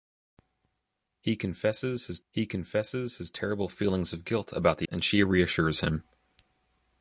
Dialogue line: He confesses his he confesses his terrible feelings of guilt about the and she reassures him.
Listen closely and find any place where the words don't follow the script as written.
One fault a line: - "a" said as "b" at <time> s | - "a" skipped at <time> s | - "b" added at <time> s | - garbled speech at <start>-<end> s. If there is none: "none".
none